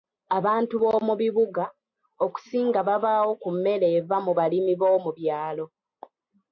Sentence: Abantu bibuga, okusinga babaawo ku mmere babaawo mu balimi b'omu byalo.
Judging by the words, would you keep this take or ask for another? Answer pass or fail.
fail